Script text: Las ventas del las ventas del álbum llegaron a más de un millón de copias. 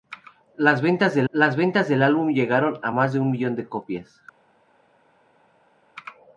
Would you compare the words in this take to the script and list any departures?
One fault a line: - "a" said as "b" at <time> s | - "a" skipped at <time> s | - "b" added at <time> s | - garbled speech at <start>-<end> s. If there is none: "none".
none